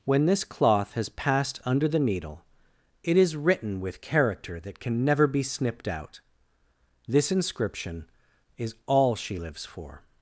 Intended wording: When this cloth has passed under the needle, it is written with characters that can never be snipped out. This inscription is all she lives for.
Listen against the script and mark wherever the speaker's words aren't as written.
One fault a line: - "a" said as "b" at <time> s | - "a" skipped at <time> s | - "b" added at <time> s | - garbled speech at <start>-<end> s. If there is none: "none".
- "characters" said as "character" at 4.0 s